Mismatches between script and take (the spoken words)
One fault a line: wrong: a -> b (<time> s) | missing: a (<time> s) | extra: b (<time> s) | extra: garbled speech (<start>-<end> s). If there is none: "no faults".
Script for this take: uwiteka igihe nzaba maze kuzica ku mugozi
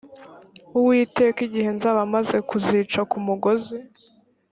no faults